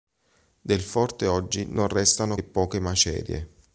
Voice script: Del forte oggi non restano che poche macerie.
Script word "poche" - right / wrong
right